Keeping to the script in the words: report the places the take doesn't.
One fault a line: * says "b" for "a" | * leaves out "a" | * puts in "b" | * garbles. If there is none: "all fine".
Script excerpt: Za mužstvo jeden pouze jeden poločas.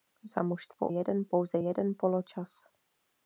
all fine